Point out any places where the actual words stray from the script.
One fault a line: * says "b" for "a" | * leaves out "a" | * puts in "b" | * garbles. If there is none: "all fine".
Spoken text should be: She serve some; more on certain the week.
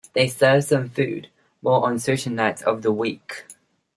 * says "They" for "She"
* puts in "food"
* puts in "nights of"